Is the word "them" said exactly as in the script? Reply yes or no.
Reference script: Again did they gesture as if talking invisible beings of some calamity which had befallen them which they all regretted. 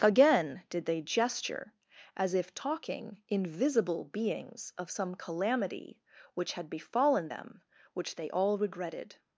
yes